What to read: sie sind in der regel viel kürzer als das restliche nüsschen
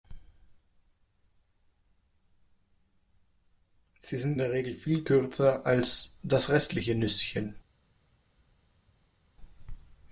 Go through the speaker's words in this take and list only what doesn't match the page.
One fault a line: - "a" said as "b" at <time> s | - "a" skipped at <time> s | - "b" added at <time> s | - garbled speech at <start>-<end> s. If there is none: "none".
- "in" skipped at 4.4 s